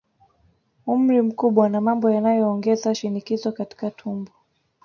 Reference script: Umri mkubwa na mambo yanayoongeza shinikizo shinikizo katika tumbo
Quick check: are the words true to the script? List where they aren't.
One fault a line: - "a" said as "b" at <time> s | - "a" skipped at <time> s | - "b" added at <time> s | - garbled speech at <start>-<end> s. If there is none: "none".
- "shinikizo" skipped at 3.5 s